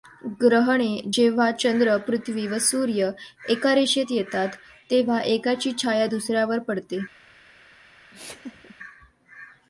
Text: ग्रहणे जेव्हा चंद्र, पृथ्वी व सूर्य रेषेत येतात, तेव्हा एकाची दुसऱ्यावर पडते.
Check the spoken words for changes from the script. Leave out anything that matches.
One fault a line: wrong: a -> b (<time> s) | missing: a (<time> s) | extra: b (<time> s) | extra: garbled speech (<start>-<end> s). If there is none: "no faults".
extra: एका (3.5 s)
extra: छाया (5.8 s)